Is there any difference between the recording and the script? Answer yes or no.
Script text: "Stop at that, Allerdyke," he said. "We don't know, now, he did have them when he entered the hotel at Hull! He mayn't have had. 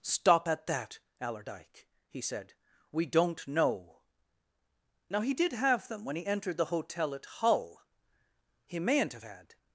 no